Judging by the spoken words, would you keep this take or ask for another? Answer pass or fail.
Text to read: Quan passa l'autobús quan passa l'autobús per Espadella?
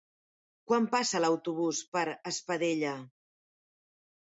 fail